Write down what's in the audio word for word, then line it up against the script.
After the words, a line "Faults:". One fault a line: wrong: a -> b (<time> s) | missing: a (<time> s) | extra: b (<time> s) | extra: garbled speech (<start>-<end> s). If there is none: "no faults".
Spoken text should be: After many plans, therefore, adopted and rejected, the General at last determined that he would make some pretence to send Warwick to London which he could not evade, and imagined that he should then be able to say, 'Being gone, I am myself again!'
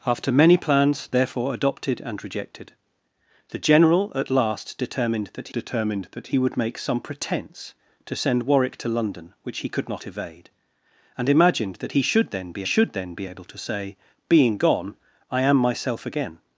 After many plans, therefore, adopted and rejected, the General at last determined that determined that he would make some pretence to send Warwick to London which he could not evade, and imagined that he should then be should then be able to say, 'Being gone, I am myself again!'
Faults:
extra: determined that (5.5 s)
extra: should then be (12.7 s)